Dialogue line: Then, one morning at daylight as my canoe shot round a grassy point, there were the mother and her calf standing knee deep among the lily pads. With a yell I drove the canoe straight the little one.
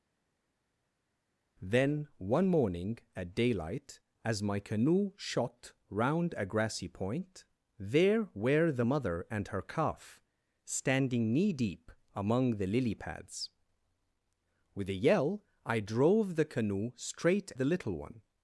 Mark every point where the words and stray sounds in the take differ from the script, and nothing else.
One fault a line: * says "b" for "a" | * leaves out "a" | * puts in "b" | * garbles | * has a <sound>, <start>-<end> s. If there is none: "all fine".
all fine